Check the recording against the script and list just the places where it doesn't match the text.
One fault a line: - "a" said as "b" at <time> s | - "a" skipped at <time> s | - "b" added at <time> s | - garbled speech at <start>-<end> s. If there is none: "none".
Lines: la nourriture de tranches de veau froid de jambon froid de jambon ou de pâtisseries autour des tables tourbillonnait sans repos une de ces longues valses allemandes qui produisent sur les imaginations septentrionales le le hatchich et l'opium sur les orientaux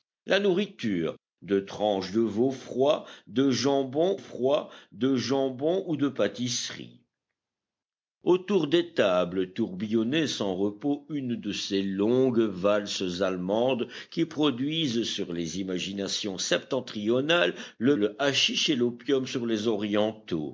none